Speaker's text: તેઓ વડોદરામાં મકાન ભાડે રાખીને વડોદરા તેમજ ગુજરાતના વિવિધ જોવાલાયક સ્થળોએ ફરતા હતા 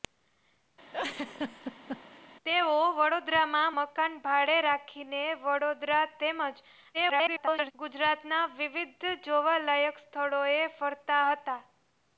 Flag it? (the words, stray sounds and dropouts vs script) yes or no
yes